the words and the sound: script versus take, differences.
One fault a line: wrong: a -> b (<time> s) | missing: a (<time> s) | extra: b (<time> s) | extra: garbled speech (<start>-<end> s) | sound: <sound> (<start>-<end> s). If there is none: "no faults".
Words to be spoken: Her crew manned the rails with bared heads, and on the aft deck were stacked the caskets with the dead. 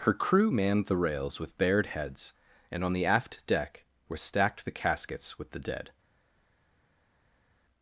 no faults